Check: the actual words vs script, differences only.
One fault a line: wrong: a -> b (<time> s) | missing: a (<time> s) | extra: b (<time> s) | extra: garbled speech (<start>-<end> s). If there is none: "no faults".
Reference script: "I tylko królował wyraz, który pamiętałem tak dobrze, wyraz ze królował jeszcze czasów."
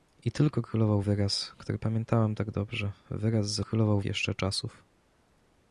no faults